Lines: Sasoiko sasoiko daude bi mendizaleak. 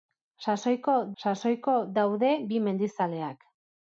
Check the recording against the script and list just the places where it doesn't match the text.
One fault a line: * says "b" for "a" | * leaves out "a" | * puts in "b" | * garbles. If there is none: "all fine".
all fine